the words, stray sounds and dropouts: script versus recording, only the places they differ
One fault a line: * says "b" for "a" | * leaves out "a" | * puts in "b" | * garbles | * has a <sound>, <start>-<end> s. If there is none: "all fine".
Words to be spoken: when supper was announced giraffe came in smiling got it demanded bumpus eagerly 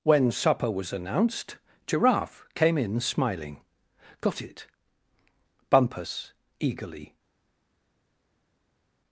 * leaves out "demanded"